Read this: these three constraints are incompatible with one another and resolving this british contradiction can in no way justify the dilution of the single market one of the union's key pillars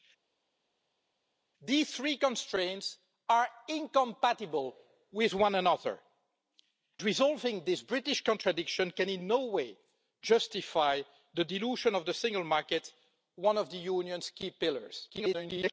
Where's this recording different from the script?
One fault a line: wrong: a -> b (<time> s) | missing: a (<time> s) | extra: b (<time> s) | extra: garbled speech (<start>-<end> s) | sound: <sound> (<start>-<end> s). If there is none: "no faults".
missing: and (6.0 s)
extra: garbled speech (15.1-15.7 s)